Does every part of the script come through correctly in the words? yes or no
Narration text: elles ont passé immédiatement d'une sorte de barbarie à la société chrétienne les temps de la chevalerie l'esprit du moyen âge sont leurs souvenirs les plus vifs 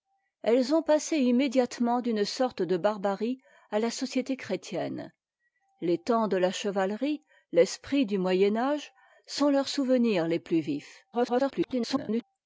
no